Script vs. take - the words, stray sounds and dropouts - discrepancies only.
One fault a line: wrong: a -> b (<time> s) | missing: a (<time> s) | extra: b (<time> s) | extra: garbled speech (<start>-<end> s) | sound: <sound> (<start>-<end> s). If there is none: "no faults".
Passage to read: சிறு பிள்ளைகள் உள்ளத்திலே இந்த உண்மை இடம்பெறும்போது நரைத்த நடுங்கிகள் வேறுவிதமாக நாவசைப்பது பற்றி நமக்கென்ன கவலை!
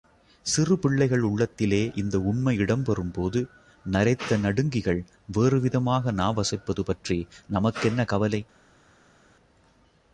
no faults